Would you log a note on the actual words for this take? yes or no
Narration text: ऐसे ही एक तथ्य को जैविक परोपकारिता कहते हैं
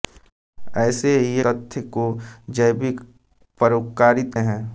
yes